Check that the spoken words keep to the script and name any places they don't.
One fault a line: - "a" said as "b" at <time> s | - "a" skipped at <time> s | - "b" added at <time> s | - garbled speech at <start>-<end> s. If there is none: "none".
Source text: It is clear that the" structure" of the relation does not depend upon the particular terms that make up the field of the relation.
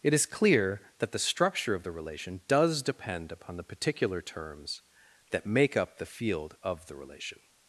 - "not" skipped at 2.8 s